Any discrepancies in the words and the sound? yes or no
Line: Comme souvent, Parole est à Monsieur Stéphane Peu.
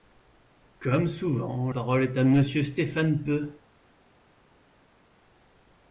no